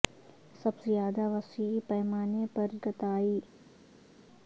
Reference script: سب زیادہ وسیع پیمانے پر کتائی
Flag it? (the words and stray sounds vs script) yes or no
no